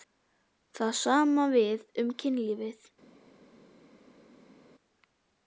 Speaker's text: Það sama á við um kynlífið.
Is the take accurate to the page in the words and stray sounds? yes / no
yes